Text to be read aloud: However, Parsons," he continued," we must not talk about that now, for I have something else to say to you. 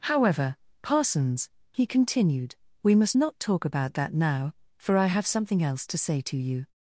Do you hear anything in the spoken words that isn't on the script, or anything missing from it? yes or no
no